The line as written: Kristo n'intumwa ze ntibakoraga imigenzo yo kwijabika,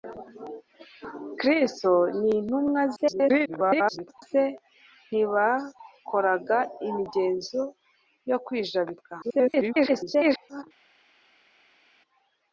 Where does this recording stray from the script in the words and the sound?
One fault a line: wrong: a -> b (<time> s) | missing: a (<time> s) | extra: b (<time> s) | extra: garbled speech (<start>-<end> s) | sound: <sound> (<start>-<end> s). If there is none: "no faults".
extra: garbled speech (3.0-4.2 s)
extra: garbled speech (9.2-10.6 s)